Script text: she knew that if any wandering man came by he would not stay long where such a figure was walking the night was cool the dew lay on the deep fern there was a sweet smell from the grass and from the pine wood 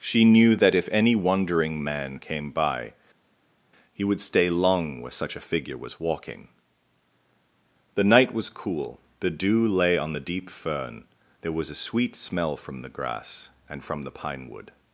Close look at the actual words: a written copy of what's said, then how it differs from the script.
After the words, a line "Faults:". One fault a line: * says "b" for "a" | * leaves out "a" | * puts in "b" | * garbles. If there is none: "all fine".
she knew that if any wandering man came by he would stay long where such a figure was walking the night was cool the dew lay on the deep fern there was a sweet smell from the grass and from the pine wood
Faults:
* leaves out "not"